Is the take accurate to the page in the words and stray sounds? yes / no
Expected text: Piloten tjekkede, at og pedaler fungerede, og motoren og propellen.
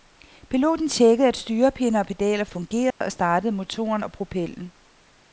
no